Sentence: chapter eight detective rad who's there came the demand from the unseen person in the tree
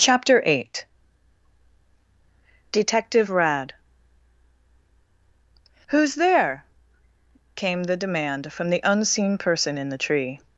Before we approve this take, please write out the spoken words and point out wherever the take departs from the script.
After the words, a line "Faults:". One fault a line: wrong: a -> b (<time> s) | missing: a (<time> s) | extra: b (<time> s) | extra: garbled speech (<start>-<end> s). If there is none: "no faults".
chapter eight detective rad who's there came the demand from the unseen person in the tree
Faults:
no faults